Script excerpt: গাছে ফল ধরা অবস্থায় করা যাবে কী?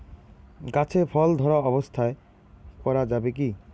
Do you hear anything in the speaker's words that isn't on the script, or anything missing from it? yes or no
no